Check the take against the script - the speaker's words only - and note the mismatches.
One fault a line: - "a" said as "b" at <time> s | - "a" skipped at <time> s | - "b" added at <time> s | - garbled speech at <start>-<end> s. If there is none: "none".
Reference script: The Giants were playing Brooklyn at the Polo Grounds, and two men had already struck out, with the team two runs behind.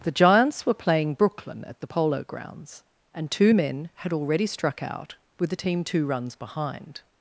none